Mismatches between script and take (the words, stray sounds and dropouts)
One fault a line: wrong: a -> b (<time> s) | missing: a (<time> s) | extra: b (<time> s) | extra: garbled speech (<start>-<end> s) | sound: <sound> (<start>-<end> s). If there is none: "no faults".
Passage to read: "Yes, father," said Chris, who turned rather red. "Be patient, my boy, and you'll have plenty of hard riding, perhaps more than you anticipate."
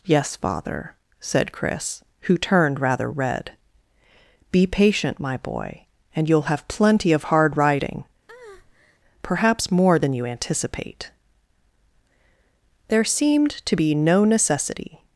sound: breath (8.3-9.0 s)
extra: There seemed to be no necessity (12.9 s)